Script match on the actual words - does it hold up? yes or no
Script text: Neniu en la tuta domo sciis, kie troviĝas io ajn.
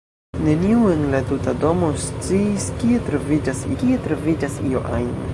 no